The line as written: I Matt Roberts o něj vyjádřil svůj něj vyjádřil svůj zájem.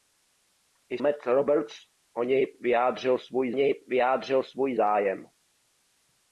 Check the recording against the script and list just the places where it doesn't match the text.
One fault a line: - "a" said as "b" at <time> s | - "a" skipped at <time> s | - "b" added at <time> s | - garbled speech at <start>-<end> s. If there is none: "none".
none